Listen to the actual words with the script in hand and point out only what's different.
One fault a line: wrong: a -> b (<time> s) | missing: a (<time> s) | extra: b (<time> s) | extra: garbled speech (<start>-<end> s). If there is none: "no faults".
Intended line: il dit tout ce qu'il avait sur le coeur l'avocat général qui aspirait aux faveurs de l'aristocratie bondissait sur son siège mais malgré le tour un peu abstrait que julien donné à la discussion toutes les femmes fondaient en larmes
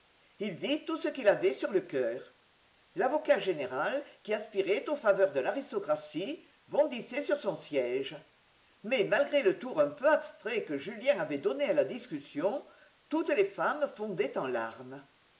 extra: avait (11.2 s)